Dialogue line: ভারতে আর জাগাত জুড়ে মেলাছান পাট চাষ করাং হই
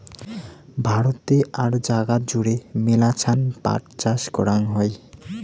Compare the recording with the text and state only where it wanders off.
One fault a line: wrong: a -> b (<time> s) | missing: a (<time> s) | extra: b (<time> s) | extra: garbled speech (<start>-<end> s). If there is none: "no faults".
no faults